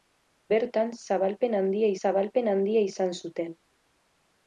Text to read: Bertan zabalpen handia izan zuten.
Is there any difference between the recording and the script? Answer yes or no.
yes